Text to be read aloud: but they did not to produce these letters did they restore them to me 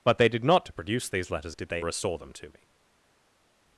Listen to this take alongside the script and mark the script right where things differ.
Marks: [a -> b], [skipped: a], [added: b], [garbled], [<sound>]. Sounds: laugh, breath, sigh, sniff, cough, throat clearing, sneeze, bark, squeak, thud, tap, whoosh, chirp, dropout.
but they did not to produce these letters did they restore them to me